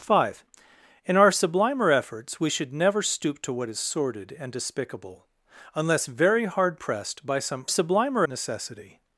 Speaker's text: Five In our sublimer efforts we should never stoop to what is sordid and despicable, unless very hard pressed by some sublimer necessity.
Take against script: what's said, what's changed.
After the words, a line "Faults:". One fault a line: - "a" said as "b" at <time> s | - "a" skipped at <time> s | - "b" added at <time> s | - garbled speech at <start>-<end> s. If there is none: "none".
Five In our sublimer efforts we should never stoop to what is sordid and despicable, unless very hard pressed by some sublimer necessity.
Faults:
none